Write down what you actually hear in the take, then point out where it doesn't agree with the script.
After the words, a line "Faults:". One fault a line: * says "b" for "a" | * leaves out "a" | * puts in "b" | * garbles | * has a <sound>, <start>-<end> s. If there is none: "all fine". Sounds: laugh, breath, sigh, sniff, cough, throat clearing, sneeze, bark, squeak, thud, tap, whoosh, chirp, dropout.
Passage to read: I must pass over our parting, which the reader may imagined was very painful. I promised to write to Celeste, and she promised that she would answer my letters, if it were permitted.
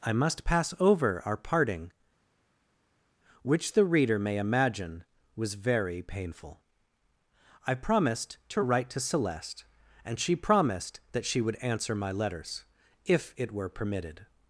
I must pass over our parting, which the reader may imagine was very painful. I promised to write to Celeste, and she promised that she would answer my letters, if it were permitted.
Faults:
* says "imagine" for "imagined"